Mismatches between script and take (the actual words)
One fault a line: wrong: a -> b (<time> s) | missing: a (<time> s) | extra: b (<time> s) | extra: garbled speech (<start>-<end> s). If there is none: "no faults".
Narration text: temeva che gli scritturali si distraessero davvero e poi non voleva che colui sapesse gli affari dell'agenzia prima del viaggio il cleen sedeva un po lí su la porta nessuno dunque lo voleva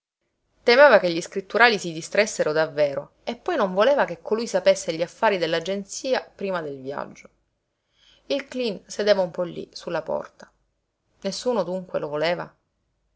no faults